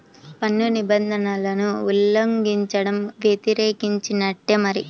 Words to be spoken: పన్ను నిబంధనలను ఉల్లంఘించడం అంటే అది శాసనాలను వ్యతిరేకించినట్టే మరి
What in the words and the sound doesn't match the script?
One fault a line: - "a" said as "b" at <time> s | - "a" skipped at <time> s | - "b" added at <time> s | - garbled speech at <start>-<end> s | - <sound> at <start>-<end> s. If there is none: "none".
- "అంటే అది శాసనాలను" skipped at 3.0 s